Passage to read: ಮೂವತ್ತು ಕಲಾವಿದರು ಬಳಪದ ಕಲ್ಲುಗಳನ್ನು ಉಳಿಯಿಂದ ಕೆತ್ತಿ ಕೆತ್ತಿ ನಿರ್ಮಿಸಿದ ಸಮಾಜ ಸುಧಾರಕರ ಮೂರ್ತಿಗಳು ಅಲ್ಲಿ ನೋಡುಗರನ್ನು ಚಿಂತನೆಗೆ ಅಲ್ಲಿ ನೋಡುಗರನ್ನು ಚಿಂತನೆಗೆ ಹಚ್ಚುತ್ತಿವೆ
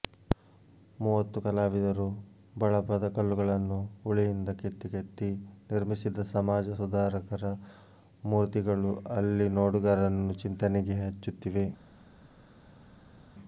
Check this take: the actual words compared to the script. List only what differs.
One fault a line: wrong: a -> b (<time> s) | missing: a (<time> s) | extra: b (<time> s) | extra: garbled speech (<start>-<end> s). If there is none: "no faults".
missing: ಅಲ್ಲಿ ನೋಡುಗರನ್ನು ಚಿಂತನೆಗೆ (11.0 s)